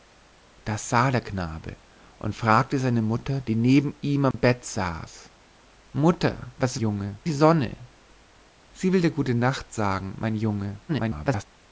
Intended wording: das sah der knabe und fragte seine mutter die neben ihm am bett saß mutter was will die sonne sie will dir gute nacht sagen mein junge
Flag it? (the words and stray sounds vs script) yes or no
yes